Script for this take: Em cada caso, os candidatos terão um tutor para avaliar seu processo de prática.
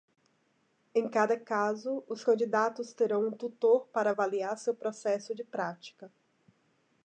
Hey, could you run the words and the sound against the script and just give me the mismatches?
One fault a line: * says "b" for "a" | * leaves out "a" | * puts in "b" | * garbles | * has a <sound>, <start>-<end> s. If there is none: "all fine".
all fine